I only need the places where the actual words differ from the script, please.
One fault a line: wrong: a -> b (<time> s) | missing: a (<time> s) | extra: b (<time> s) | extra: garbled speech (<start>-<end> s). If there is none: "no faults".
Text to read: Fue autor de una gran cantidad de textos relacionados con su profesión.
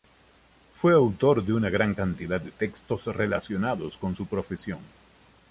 no faults